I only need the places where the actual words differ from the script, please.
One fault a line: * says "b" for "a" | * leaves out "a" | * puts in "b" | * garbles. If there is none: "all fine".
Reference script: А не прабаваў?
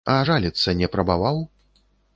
* puts in "жаліцца"